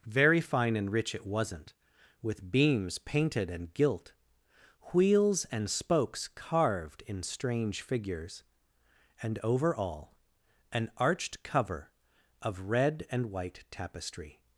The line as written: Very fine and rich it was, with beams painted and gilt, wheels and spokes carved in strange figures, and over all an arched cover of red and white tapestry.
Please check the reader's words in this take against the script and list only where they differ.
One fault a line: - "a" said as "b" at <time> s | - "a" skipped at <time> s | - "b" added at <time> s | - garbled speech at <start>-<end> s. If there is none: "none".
- "was" said as "wasn't" at 1.2 s